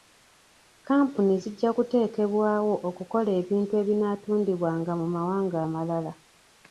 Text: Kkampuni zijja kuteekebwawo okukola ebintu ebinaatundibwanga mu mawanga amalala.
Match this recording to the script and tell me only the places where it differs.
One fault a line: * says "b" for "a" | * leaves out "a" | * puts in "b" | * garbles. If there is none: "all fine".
all fine